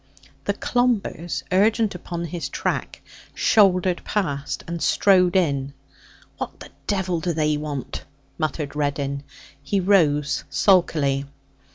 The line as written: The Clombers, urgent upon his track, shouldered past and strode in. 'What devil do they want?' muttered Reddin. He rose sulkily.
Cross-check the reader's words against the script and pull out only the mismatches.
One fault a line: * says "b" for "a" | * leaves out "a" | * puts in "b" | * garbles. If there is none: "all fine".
* puts in "the"